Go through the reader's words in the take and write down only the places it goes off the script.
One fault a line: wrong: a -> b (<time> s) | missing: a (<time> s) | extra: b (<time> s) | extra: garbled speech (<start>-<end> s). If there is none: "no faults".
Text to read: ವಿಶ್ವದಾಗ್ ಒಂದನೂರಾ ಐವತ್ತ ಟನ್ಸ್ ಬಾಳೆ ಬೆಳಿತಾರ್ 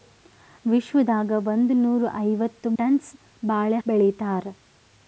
no faults